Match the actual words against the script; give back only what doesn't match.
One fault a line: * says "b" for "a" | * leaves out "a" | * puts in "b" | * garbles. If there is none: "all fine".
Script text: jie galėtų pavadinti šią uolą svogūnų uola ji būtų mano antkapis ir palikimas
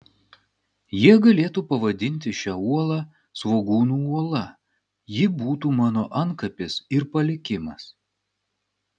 all fine